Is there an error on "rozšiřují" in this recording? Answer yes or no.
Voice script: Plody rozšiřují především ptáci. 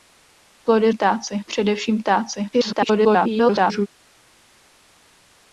yes